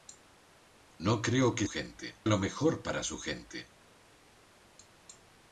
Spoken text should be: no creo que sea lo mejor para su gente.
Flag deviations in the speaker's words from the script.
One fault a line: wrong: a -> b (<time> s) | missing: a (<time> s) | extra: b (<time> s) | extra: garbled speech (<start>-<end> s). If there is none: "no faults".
wrong: sea -> gente (1.7 s)